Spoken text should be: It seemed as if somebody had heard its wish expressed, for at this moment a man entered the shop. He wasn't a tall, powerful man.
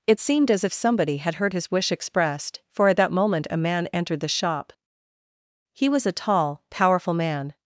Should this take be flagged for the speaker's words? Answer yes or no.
yes